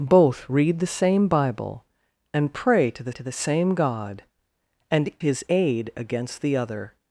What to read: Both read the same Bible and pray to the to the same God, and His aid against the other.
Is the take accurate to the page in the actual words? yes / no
yes